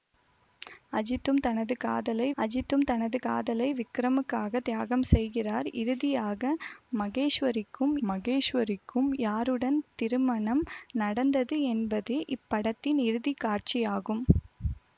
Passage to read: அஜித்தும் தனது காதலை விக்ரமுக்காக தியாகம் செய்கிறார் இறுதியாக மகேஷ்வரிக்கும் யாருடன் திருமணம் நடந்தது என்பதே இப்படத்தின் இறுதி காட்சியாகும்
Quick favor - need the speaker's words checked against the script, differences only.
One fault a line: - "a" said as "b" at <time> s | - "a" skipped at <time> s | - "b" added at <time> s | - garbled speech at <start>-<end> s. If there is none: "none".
- "அஜித்தும் தனது காதலை" added at 2.4 s
- "மகேஷ்வரிக்கும்" added at 8.1 s